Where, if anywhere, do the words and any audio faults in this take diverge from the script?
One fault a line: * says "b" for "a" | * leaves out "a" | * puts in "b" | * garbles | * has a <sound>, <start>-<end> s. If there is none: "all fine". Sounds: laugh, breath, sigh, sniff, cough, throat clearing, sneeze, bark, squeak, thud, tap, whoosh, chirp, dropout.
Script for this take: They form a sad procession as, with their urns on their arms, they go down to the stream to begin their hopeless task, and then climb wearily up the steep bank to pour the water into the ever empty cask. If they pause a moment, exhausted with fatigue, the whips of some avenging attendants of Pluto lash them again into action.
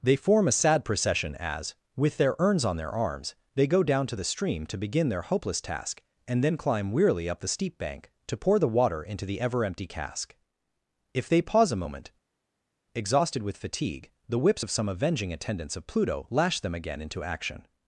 all fine